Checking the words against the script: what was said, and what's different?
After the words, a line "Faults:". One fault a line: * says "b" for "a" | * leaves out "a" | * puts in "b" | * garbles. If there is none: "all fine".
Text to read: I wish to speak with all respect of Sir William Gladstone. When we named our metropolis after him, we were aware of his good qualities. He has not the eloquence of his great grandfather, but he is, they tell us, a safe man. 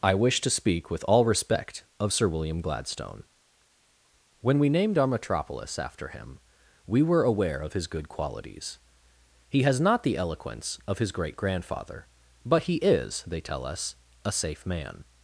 I wish to speak with all respect of Sir William Gladstone. When we named our metropolis after him, we were aware of his good qualities. He has not the eloquence of his great grandfather, but he is, they tell us, a safe man.
Faults:
all fine